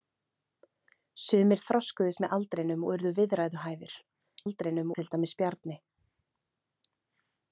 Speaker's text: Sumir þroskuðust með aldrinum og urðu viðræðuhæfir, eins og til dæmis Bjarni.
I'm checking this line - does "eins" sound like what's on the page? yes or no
no